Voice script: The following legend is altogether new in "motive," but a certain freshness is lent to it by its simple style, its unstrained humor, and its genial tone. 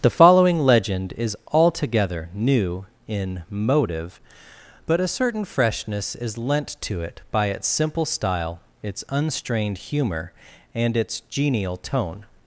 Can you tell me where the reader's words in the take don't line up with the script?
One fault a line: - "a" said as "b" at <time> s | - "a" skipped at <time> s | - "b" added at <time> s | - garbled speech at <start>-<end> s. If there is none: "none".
none